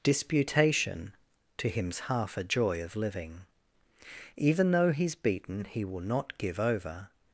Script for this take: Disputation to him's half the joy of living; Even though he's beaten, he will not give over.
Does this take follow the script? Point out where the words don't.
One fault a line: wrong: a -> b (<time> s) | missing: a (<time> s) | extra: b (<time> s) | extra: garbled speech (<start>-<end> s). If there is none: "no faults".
wrong: the -> a (2.4 s)